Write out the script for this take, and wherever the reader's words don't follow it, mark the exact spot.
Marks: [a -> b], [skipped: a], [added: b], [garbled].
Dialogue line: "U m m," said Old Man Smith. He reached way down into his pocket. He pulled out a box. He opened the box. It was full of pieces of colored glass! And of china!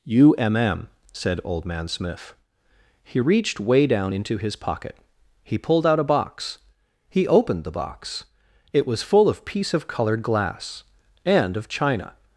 "U m m," said Old Man Smith. He reached way down into his pocket. He pulled out a box. He opened the box. It was full of [pieces -> piece] of colored glass! And of china!